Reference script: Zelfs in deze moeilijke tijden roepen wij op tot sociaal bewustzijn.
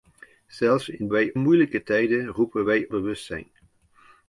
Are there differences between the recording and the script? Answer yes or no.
yes